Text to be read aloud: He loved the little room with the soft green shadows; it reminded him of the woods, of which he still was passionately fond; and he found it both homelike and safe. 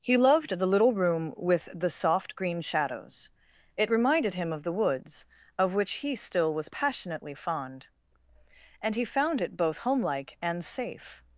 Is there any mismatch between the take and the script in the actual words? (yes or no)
no